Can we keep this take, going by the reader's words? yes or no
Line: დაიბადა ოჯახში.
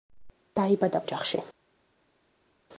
yes